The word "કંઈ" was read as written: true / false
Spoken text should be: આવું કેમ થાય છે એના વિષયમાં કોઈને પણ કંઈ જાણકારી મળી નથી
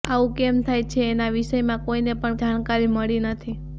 false